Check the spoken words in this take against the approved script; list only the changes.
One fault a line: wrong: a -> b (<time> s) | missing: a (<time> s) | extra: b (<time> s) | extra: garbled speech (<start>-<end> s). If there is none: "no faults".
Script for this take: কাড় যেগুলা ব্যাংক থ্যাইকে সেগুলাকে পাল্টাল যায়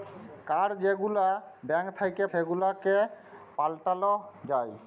no faults